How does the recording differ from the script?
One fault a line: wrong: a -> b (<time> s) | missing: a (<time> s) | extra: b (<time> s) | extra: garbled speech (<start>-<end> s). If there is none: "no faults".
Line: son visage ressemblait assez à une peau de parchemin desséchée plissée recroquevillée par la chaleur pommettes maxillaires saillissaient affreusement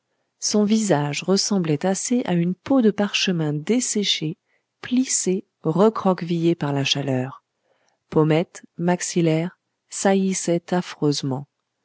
no faults